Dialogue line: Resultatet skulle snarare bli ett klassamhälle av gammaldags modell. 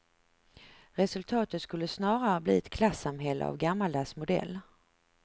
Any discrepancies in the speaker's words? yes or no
no